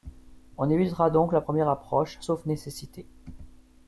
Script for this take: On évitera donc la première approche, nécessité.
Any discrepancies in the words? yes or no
yes